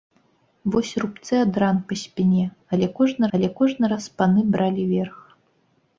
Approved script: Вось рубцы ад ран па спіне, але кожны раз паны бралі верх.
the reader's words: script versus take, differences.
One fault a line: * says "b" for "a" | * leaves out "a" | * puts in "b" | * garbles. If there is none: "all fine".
* puts in "але кожны"